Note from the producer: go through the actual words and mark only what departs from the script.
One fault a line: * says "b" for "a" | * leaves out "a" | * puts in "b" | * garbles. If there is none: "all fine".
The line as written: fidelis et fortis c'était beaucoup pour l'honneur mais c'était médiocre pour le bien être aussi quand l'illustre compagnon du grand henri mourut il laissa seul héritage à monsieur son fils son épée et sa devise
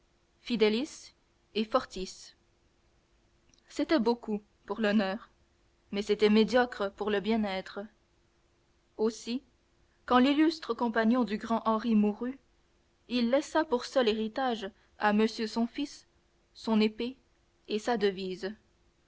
* puts in "pour"